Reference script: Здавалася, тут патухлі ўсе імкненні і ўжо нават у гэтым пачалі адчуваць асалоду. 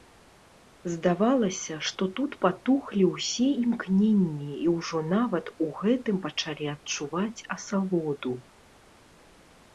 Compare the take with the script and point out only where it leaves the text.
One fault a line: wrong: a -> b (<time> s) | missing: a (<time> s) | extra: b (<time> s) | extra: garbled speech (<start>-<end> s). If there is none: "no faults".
extra: што (1.9 s)